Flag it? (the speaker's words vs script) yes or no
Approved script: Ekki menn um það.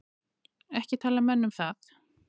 yes